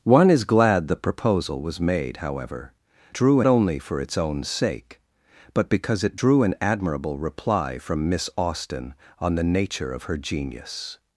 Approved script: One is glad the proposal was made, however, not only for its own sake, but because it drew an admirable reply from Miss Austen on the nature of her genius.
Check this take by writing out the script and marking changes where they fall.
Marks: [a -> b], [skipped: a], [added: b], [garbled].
One is glad the proposal was made, however, [not -> drew] only for its own sake, but because it drew an admirable reply from Miss Austen on the nature of her genius.